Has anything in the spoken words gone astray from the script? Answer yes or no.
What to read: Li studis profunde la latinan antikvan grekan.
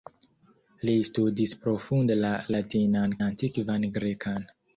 no